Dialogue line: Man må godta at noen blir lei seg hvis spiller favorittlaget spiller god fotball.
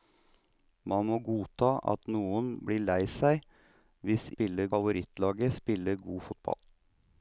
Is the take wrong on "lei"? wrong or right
right